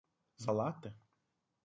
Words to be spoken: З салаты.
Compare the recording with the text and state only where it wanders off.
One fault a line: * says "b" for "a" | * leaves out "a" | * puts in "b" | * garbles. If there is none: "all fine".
all fine